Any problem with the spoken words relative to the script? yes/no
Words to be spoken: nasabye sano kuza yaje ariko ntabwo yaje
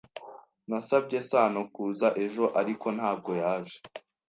yes